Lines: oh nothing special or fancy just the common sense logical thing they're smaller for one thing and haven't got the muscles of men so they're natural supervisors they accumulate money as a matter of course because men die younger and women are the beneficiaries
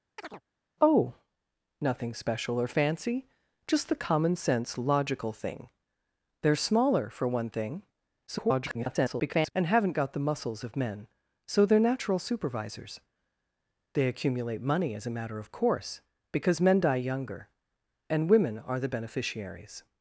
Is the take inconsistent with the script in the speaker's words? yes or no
yes